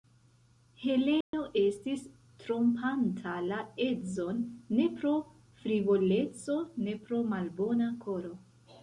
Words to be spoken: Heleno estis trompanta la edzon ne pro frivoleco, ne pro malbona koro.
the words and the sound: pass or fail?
fail